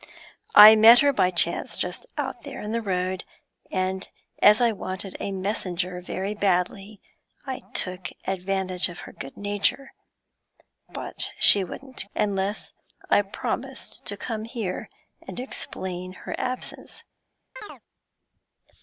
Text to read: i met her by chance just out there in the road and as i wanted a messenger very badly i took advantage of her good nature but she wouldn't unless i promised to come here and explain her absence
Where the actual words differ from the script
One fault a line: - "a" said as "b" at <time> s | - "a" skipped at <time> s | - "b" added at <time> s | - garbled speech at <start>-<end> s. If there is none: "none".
none